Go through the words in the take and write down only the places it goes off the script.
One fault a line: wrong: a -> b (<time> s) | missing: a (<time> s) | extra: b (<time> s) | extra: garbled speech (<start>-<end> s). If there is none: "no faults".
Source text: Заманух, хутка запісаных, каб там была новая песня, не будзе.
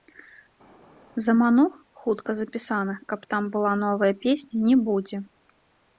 no faults